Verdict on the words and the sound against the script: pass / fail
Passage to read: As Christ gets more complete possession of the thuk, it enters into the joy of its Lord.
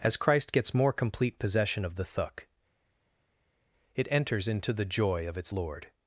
pass